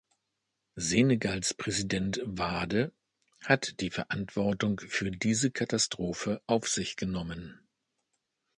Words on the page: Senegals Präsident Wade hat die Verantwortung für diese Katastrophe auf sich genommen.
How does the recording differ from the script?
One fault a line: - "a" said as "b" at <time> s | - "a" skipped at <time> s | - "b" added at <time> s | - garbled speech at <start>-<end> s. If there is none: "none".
none